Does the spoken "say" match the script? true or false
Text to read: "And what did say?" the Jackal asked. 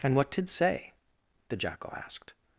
true